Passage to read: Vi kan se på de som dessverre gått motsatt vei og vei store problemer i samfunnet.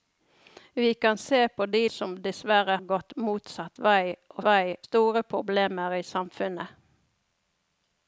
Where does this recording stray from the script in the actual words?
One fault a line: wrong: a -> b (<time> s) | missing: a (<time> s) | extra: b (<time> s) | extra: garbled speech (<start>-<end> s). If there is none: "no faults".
no faults